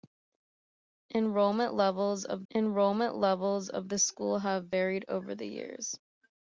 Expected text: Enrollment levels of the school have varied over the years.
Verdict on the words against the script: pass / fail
fail